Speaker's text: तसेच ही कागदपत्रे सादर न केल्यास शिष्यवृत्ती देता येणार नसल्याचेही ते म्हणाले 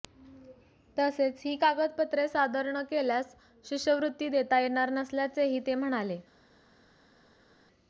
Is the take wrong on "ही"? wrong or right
right